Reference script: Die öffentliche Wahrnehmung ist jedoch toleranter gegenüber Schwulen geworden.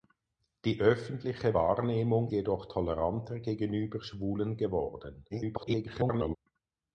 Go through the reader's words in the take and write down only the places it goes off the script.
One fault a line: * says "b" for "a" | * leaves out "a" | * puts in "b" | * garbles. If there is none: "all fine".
* leaves out "ist"
* garbles